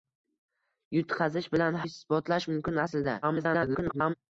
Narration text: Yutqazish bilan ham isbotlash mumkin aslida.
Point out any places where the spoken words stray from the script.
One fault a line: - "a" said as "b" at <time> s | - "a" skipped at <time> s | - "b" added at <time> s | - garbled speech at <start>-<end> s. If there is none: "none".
- "ham" skipped at 1.8 s
- garbled speech at 3.2-4.1 s